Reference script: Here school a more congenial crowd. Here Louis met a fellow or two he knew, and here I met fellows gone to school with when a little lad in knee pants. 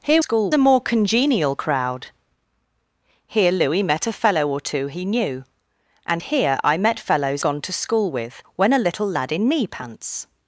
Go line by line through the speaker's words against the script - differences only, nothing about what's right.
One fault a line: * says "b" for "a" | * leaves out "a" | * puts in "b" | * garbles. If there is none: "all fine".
all fine